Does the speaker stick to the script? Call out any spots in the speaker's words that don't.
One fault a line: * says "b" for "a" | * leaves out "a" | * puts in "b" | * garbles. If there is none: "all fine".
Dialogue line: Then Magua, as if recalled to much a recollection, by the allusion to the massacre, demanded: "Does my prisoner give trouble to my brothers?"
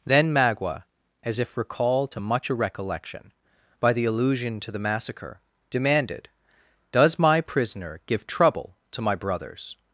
all fine